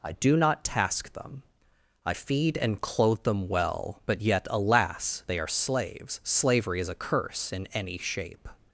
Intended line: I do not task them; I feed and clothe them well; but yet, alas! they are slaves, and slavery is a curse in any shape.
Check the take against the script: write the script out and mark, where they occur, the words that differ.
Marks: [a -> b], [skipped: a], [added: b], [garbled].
I do not task them; I feed and clothe them well; but yet, alas! they are slaves, [skipped: and] slavery is a curse in any shape.